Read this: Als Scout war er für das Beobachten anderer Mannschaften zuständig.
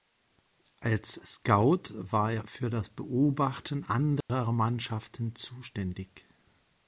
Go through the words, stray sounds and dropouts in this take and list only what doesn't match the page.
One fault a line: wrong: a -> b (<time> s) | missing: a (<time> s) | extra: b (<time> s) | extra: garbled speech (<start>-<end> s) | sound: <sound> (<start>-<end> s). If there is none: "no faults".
sound: dropout (4.2-4.3 s)